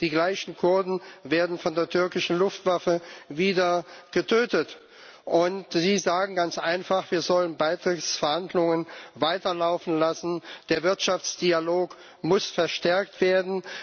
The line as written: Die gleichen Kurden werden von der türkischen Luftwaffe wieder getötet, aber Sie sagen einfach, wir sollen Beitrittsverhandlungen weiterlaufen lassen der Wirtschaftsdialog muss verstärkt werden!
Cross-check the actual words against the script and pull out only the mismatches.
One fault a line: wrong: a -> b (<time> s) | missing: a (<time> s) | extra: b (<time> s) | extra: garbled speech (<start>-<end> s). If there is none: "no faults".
wrong: aber -> und (5.2 s)
extra: ganz (6.3 s)